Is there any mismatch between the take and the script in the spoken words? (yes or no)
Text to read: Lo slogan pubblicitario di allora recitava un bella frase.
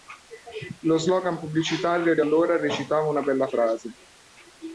yes